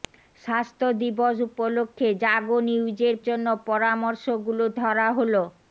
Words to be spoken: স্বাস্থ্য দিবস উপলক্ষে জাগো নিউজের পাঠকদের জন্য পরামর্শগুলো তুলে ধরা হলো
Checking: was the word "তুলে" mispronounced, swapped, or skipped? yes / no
yes